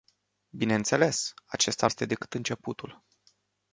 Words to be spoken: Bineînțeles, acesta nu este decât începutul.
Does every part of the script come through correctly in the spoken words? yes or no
no